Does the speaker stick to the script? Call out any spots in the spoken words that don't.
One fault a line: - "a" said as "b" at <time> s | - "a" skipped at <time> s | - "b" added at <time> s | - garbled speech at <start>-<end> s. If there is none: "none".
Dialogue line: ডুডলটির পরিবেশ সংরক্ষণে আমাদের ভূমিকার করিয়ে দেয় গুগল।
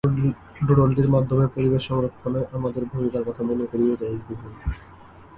- "মাধ্যমে" added at 1.1 s
- "কথা মনে" added at 3.3 s